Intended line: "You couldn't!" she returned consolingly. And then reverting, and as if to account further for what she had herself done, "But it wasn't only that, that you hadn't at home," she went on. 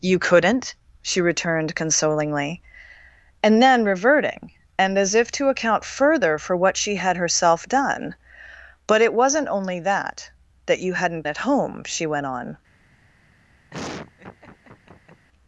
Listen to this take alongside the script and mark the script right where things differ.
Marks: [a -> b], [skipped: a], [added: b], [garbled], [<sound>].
"You couldn't!" she returned consolingly. And then reverting, and as if to account further for what she had herself done, "But it wasn't only that, that you hadn't at home," she went on. [laugh]